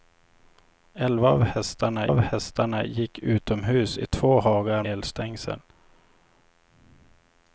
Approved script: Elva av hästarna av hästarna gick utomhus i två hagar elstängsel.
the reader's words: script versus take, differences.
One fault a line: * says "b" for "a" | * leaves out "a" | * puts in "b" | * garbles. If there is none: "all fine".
all fine